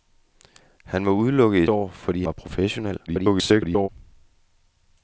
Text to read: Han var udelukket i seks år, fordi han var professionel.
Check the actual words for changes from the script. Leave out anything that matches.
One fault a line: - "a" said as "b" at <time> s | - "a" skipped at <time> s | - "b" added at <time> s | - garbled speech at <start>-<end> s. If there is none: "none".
- "seks" skipped at 1.7 s
- "han" skipped at 2.2 s
- garbled speech at 3.1-3.9 s